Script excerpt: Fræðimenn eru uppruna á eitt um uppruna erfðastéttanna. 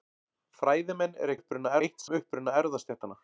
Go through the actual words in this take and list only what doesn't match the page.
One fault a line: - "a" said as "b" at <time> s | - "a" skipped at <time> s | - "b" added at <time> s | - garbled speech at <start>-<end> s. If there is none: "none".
none